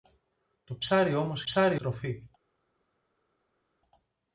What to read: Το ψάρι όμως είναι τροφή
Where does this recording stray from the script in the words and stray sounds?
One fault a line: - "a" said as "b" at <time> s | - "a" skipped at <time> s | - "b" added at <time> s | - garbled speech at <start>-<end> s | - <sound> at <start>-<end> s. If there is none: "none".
- "είναι" said as "ψάρι" at 1.4 s